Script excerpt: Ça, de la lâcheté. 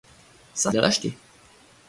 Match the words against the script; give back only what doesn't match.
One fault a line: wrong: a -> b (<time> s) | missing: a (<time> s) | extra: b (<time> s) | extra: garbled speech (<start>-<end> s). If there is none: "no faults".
no faults